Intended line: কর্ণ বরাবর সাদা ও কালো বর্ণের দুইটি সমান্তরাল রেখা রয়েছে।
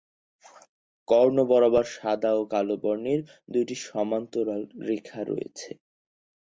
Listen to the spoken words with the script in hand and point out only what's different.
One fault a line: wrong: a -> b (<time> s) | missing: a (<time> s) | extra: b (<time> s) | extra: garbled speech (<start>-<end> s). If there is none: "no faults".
no faults